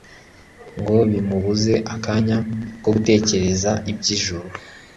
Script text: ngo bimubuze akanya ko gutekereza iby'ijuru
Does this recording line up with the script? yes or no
yes